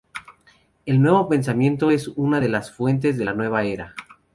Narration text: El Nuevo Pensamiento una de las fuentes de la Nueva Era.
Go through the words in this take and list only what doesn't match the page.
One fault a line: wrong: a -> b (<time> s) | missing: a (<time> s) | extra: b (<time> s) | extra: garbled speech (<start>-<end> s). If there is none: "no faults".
extra: es (1.9 s)